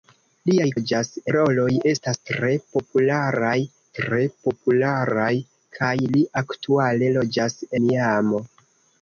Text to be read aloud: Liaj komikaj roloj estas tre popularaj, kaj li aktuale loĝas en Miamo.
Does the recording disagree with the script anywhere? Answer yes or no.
yes